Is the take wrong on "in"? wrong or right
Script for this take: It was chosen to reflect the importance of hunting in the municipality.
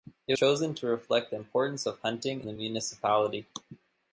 wrong